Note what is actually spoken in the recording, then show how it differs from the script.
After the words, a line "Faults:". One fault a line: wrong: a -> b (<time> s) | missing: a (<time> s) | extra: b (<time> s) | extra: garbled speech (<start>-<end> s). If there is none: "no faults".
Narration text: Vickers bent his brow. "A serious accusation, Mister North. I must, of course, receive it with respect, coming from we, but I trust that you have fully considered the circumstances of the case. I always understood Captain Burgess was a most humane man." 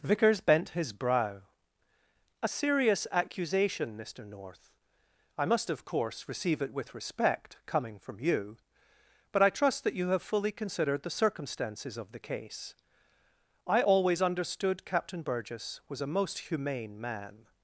Vickers bent his brow. "A serious accusation, Mister North. I must, of course, receive it with respect, coming from you, but I trust that you have fully considered the circumstances of the case. I always understood Captain Burgess was a most humane man."
Faults:
wrong: we -> you (8.2 s)